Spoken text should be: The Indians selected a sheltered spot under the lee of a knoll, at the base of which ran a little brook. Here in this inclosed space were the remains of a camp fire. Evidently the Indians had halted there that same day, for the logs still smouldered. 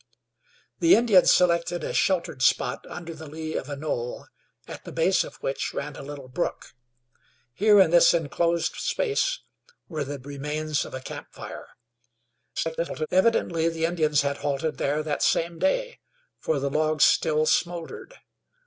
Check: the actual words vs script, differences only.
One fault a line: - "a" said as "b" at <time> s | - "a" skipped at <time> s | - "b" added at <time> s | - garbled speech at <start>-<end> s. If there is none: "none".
- garbled speech at 12.6-13.1 s